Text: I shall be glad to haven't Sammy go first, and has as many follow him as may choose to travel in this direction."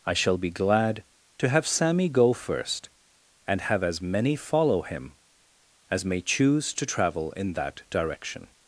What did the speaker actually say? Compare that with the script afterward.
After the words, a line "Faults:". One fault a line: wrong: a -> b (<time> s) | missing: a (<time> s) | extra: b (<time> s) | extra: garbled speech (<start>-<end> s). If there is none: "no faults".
I shall be glad to have Sammy go first, and have as many follow him as may choose to travel in that direction."
Faults:
wrong: haven't -> have (1.5 s)
wrong: has -> have (3.6 s)
wrong: this -> that (7.5 s)